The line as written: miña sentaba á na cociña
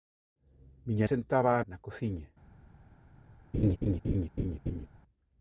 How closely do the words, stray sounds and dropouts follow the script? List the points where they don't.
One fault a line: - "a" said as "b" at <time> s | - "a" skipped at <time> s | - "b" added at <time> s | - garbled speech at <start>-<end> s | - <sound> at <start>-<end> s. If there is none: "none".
- laugh at 3.5-4.9 s